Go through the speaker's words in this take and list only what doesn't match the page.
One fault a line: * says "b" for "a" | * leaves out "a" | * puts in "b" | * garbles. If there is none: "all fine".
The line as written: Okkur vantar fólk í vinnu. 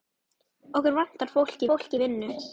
* puts in "fólk"